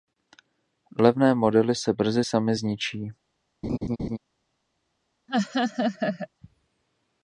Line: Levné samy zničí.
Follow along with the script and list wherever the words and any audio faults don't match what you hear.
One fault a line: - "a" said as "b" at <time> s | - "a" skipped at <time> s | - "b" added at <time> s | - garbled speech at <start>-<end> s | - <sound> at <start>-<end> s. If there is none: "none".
- "modely se brzy" added at 1.4 s
- laugh at 3.6-4.2 s
- laugh at 5.3-6.3 s